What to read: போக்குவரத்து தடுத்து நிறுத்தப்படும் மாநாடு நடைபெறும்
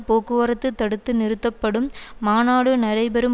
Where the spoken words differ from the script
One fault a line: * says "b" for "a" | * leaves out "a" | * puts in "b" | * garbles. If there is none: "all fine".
all fine